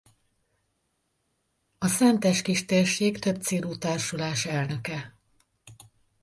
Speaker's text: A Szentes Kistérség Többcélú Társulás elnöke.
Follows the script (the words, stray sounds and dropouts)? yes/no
yes